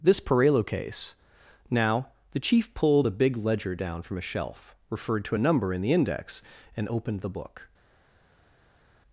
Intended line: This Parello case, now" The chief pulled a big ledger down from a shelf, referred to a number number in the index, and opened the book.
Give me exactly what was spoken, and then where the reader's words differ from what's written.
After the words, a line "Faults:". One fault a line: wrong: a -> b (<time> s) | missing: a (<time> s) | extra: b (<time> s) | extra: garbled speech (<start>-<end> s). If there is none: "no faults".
This Parello case, now" The chief pulled a big ledger down from a shelf, referred to a number in the index, and opened the book.
Faults:
missing: number (5.7 s)